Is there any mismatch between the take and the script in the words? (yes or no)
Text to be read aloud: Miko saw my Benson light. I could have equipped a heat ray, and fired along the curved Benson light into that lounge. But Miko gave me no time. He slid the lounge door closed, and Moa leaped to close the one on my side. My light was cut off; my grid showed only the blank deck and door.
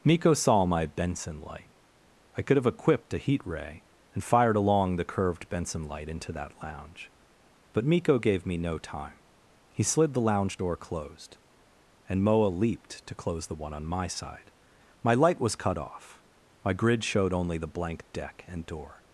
no